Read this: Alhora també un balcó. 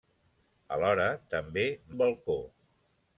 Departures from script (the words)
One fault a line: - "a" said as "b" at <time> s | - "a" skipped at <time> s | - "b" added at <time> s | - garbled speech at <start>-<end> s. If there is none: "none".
none